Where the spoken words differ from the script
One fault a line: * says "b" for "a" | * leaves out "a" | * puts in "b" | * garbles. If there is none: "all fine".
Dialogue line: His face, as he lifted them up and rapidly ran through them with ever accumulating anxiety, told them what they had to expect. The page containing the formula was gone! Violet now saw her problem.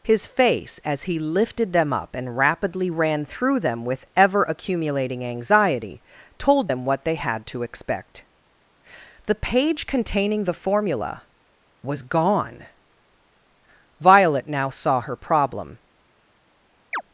all fine